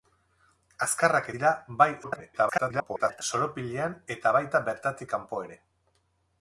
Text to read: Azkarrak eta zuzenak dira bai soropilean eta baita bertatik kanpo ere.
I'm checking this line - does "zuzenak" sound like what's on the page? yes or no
no